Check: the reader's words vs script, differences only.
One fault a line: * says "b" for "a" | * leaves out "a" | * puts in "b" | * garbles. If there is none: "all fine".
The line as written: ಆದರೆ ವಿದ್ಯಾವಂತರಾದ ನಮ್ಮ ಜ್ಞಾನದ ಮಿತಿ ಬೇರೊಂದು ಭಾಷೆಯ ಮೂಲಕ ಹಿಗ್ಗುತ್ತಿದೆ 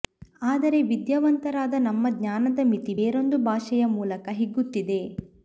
all fine